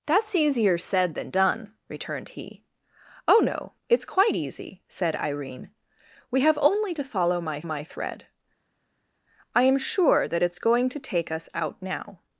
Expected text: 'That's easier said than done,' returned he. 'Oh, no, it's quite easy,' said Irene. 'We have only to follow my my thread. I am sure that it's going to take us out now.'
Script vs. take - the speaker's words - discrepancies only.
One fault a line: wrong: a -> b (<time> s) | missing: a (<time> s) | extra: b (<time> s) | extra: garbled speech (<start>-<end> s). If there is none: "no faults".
no faults